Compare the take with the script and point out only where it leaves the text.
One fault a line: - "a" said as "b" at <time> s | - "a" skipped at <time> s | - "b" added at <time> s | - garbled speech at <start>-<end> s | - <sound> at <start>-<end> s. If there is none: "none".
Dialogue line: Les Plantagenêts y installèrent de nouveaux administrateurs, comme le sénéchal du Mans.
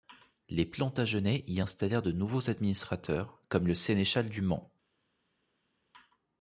none